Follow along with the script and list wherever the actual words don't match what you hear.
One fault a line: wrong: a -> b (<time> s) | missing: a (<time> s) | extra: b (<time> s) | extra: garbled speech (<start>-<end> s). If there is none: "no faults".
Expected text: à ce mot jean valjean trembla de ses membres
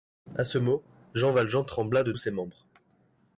no faults